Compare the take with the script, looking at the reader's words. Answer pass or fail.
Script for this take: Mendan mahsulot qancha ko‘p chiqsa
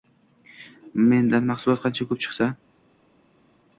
pass